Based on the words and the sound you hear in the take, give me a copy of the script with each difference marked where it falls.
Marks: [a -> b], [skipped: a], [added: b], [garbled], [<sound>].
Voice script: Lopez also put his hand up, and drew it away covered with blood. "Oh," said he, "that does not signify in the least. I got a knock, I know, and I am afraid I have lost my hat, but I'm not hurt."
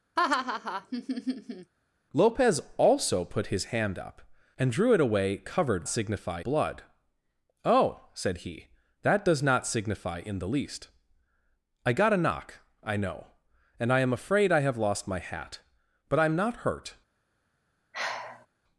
[laugh] Lopez also put his hand up, and drew it away covered [with -> signify] blood. "Oh," said he, "that does not signify in the least. I got a knock, I know, and I am afraid I have lost my hat, but I'm not hurt." [sigh]